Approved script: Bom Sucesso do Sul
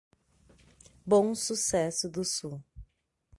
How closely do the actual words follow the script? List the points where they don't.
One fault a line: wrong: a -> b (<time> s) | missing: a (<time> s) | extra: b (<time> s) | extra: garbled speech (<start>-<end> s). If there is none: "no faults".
no faults